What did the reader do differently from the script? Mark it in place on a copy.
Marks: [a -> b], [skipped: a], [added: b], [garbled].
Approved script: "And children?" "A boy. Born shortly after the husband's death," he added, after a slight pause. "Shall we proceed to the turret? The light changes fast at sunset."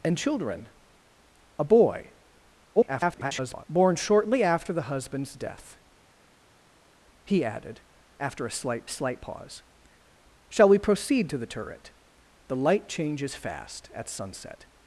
"And children?" "A boy. [garbled] Born shortly after the husband's death," he added, after a slight [added: slight] pause. "Shall we proceed to the turret? The light changes fast at sunset."